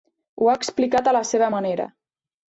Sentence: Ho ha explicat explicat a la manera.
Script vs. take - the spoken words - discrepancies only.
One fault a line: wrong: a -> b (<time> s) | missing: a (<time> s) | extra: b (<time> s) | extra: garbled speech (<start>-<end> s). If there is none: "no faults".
missing: explicat (1.1 s)
extra: seva (1.3 s)